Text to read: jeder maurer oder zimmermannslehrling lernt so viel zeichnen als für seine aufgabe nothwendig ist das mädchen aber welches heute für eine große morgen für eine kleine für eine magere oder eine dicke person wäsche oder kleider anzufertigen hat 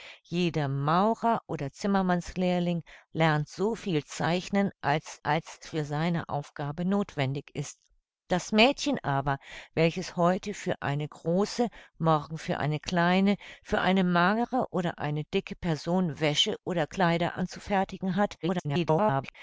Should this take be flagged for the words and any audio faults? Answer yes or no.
yes